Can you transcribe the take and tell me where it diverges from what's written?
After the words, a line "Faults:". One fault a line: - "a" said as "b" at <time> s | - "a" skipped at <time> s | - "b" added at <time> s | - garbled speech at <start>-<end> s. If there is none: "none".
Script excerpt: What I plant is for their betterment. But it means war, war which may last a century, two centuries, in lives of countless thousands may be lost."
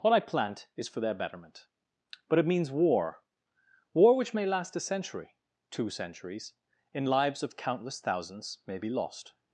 What I plant is for their betterment. But it means war, war which may last a century, two centuries, in lives of countless thousands may be lost."
Faults:
none